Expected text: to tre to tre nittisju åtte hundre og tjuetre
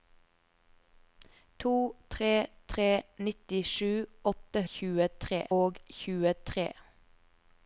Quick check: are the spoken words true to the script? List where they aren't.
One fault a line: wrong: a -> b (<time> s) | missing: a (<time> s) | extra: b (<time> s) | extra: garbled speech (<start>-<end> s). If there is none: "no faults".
missing: to (2.3 s)
wrong: hundre -> tjuetre (4.7 s)